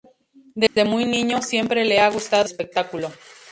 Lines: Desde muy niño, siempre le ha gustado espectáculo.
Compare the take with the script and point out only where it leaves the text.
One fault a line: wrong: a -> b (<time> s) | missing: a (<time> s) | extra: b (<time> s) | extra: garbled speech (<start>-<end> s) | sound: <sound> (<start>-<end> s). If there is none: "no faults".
sound: dropout (0.7-0.8 s)